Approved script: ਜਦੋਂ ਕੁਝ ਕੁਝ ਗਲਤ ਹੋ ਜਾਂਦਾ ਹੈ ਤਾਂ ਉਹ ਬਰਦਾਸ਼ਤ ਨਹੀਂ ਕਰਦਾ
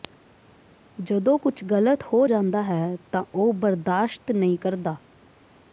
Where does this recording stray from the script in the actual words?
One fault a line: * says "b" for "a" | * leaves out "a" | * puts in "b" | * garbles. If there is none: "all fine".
* leaves out "ਕੁਝ"